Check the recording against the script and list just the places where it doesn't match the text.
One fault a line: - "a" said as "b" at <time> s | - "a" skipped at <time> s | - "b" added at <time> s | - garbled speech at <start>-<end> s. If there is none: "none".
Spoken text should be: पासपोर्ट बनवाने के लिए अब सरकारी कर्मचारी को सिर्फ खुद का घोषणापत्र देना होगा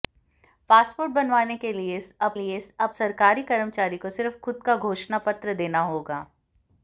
- "लिए अब" added at 2.3 s